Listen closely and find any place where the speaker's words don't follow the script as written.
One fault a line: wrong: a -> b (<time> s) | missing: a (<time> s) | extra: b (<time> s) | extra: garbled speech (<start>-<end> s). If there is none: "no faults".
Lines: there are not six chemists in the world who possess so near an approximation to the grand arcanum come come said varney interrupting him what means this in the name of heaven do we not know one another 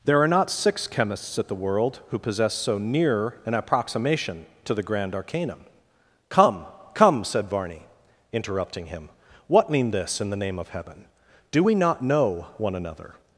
wrong: in -> at (1.4 s)
wrong: means -> mean (9.7 s)